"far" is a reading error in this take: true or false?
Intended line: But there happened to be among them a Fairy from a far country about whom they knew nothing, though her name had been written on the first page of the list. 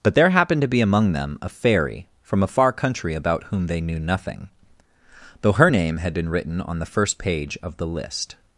false